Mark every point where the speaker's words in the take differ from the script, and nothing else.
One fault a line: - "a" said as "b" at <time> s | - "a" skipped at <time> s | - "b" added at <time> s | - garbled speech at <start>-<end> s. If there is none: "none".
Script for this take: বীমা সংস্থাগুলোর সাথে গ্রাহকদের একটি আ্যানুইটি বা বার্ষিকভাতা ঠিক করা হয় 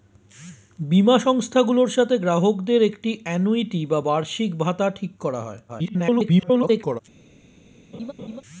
- garbled speech at 5.7-7.0 s